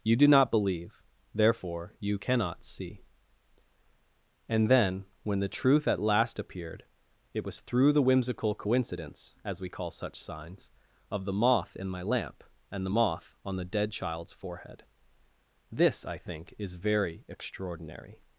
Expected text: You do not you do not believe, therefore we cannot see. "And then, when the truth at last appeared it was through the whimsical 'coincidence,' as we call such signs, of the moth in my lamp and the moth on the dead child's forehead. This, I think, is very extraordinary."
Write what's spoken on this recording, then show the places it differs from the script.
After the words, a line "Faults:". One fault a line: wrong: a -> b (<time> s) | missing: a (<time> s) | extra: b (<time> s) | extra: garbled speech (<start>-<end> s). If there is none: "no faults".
You do not believe, therefore you cannot see. "And then, when the truth at last appeared it was through the whimsical 'coincidence,' as we call such signs, of the moth in my lamp and the moth on the dead child's forehead. This, I think, is very extraordinary."
Faults:
missing: you do not (0.5 s)
wrong: we -> you (2.0 s)